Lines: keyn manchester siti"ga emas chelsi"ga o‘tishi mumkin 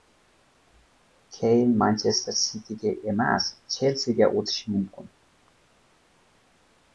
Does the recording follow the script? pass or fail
pass